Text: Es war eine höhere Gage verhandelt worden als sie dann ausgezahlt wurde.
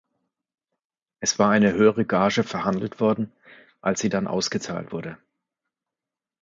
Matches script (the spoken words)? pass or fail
pass